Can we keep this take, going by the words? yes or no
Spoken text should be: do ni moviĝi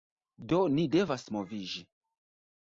no